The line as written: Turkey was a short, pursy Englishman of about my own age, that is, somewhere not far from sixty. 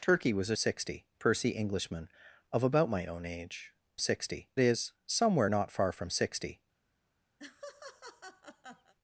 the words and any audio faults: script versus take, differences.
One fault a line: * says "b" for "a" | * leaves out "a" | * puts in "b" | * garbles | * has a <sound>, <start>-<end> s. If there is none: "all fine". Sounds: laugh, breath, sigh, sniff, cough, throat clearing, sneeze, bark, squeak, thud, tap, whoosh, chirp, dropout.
* says "sixty" for "short"
* says "sixty" for "that"
* has a laugh, 7.4-8.9 s